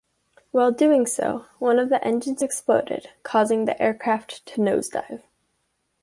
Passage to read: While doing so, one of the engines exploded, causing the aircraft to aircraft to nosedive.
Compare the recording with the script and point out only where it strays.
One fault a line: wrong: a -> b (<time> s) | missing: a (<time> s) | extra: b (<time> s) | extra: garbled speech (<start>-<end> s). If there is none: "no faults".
missing: aircraft to (4.6 s)